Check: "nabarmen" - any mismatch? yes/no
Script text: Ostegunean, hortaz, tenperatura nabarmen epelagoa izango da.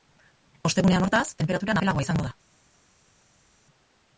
yes